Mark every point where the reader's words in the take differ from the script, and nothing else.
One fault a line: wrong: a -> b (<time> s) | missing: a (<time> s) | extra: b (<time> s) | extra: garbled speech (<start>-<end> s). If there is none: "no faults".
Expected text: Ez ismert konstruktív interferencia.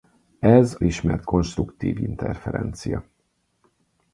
no faults